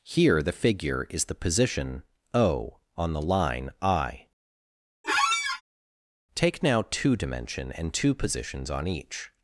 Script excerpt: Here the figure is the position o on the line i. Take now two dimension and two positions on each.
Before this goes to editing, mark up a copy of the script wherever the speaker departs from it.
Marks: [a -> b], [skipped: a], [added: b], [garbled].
Here the figure is the position o on the line i. Take now two dimension and two positions on each.